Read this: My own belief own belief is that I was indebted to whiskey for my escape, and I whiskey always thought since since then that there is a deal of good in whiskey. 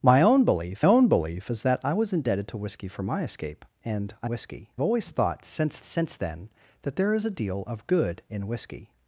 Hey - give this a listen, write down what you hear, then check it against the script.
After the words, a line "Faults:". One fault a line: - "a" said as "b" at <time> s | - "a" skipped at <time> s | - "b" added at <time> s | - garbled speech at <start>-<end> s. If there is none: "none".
My own belief own belief is that I was indebted to whiskey for my escape, and I whiskey always thought since since then that there is a deal of good in whiskey.
Faults:
none